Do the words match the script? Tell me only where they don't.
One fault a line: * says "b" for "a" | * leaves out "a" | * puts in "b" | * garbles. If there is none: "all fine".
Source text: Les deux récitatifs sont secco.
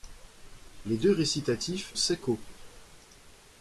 * leaves out "sont"